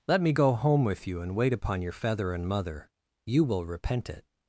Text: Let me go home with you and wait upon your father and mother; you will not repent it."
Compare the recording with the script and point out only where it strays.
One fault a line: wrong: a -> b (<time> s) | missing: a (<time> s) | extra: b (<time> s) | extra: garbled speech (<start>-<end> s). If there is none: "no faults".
wrong: father -> feather (1.9 s)
missing: not (3.7 s)